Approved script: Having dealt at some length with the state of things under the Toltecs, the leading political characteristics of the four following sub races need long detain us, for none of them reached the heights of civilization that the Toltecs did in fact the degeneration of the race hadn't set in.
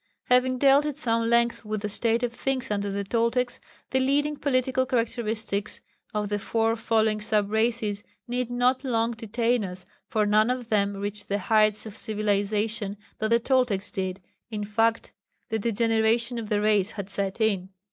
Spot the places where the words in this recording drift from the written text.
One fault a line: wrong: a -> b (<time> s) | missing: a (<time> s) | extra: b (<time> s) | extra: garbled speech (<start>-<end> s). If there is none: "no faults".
extra: not (8.5 s)
wrong: hadn't -> had (16.9 s)